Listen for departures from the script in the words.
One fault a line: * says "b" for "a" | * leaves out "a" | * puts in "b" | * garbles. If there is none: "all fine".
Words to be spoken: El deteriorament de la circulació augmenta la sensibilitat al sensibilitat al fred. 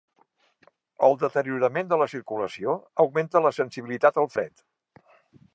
* leaves out "sensibilitat al"